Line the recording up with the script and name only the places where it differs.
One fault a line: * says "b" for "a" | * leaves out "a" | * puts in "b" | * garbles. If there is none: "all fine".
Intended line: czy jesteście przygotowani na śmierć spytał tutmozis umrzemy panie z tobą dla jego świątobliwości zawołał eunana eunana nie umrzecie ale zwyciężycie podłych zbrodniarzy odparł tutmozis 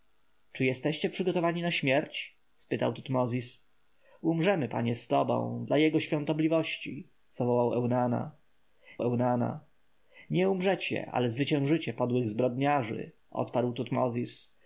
all fine